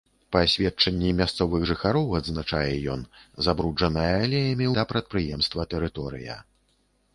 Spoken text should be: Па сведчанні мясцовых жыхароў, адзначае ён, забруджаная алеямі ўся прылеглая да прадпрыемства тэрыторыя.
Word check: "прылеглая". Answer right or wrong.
wrong